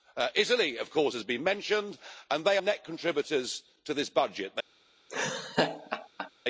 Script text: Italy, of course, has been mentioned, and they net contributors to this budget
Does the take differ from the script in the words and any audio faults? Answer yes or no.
yes